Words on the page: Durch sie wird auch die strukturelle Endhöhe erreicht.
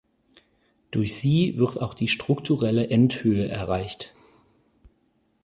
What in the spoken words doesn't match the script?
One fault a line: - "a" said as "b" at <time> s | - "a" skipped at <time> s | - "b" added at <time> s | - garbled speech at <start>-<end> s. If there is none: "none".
none